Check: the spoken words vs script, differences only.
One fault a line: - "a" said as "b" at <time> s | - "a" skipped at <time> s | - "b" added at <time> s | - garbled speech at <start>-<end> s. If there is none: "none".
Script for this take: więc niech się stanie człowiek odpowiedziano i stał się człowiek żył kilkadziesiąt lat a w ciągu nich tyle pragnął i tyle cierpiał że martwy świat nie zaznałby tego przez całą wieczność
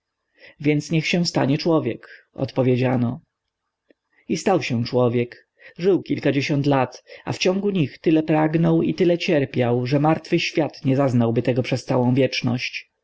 none